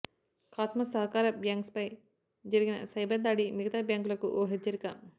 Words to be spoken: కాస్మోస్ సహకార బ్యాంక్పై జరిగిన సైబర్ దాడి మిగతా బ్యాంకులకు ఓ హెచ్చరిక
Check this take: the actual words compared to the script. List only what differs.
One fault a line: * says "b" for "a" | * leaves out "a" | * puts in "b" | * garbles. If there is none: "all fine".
all fine